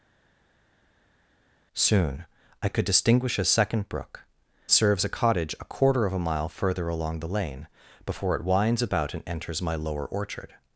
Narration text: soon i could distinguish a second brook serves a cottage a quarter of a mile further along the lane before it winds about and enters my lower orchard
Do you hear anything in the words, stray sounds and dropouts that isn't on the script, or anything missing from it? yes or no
no